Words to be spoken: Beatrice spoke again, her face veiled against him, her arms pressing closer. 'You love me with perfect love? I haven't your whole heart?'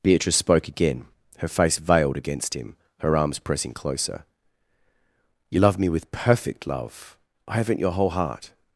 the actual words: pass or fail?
pass